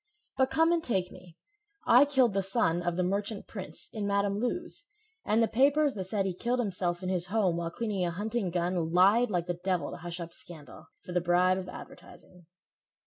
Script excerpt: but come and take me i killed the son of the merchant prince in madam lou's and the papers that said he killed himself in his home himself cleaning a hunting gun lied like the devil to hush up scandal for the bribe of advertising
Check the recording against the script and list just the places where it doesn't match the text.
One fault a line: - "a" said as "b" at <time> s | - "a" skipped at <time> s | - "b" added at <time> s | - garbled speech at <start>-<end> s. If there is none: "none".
- "himself" said as "while" at 7.6 s